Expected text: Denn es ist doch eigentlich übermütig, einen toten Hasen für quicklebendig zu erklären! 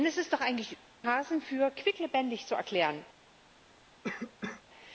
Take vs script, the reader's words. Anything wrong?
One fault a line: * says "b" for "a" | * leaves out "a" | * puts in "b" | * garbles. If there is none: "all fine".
* leaves out "übermütig einen toten"